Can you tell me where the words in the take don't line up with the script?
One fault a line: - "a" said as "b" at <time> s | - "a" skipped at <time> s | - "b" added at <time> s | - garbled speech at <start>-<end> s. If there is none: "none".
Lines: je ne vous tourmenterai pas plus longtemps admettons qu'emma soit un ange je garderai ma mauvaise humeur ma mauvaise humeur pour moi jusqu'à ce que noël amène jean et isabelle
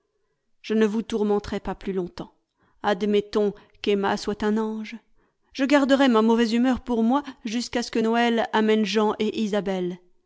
- "ma mauvaise humeur" skipped at 6.8 s